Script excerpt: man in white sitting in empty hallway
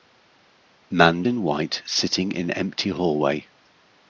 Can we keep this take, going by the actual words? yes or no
yes